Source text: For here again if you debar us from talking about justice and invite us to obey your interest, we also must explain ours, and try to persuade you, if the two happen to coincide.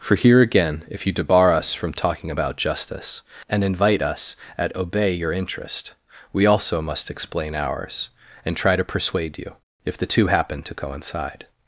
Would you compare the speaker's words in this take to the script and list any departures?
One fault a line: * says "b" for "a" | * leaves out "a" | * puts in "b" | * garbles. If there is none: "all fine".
* says "at" for "to"